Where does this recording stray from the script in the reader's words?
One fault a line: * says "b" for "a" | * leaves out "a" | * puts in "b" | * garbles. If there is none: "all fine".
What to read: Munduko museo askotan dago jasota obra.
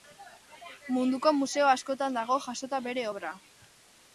* puts in "bere"